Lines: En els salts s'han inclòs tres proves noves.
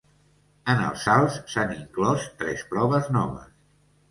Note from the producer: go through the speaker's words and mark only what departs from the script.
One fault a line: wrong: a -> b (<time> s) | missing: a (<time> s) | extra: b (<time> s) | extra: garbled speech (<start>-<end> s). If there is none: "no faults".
no faults